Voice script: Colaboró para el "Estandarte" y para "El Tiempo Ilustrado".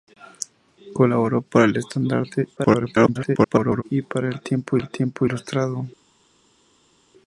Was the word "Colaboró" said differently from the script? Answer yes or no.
no